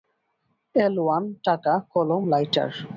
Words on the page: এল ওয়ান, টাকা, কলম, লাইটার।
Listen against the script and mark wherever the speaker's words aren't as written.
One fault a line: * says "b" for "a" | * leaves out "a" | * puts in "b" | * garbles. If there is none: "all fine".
all fine